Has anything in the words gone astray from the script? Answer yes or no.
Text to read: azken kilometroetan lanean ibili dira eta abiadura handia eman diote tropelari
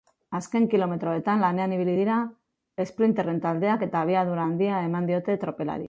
yes